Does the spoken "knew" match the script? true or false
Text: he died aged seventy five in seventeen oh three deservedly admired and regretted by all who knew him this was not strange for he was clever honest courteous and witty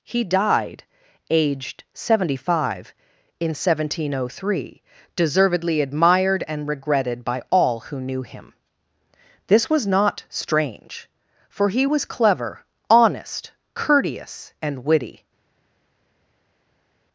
true